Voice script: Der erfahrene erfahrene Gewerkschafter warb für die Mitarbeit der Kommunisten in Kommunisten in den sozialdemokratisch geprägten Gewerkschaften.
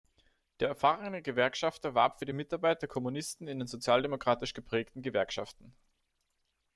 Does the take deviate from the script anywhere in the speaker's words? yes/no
yes